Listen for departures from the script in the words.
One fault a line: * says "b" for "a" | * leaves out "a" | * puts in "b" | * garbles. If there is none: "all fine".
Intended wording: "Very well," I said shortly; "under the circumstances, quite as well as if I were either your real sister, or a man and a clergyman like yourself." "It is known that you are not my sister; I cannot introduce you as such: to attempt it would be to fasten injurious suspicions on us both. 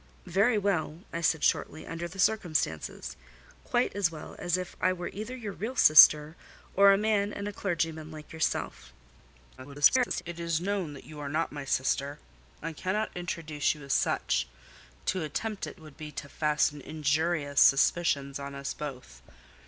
* garbles